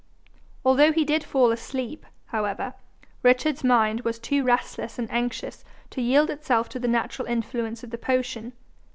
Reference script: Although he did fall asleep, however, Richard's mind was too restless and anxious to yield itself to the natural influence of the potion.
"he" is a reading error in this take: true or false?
false